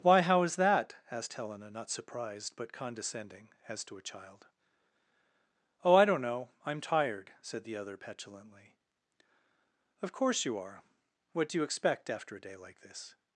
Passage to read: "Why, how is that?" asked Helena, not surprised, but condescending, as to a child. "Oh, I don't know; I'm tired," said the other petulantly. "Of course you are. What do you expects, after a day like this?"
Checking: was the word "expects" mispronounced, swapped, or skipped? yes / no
yes